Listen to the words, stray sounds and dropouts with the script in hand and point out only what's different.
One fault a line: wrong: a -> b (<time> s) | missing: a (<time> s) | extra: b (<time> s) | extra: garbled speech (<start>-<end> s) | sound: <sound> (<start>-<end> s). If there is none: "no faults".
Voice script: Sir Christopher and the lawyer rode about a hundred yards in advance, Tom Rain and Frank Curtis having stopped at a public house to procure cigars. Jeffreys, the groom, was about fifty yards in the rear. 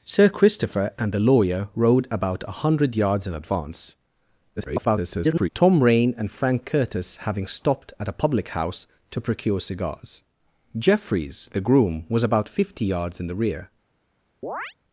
extra: garbled speech (4.6-5.5 s)
sound: chirp (14.4-14.7 s)